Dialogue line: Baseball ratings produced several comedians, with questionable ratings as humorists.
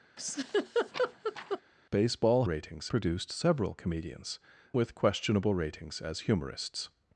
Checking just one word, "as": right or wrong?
right